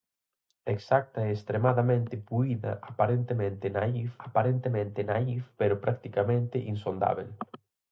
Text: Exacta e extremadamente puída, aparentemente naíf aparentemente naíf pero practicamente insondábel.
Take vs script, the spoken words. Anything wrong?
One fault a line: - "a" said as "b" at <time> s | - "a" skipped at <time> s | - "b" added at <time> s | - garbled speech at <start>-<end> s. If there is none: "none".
none